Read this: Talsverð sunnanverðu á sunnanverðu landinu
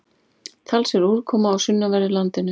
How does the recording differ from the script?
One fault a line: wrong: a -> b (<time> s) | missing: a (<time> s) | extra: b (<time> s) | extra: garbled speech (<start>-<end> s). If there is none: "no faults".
wrong: sunnanverðu -> úrkoma (1.2 s)